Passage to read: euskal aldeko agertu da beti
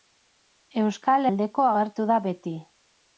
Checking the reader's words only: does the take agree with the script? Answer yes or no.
yes